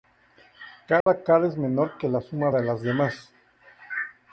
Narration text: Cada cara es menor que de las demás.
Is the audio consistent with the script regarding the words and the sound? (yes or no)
no